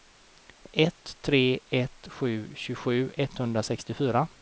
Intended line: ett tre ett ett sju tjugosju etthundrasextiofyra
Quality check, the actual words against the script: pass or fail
fail